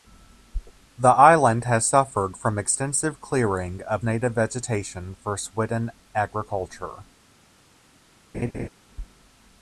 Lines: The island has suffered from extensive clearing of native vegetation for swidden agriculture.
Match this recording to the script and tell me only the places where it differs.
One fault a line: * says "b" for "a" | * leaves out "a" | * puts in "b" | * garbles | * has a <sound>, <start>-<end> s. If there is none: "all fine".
* has a laugh, 8.3-8.7 s